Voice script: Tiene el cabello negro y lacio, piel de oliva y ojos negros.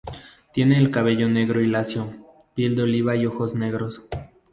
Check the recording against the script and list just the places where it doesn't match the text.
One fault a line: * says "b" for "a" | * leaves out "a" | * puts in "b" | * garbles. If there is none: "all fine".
all fine